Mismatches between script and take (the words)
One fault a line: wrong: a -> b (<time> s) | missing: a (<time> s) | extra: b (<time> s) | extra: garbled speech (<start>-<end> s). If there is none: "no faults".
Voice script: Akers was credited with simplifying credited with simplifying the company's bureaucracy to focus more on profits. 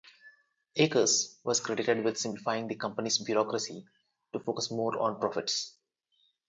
missing: credited with simplifying (2.7 s)